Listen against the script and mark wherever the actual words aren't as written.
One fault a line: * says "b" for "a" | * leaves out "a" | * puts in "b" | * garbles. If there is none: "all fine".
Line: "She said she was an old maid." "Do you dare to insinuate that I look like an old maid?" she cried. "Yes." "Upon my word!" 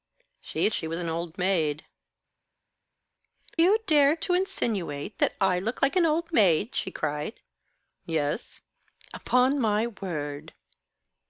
* leaves out "said"
* leaves out "Do"